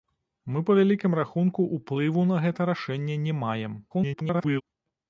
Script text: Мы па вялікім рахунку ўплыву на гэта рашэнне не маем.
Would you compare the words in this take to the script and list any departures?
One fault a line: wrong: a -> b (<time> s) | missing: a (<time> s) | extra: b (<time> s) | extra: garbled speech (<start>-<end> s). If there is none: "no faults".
extra: garbled speech (3.9-4.6 s)